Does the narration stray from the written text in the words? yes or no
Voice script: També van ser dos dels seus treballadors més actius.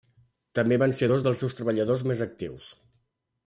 no